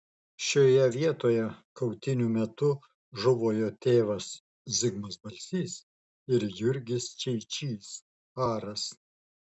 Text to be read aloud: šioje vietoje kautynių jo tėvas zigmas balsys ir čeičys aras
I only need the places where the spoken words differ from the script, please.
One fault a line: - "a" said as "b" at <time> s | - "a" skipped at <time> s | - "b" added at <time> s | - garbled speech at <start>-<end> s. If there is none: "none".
- "metu žuvo" added at 2.3 s
- "jurgis" added at 6.6 s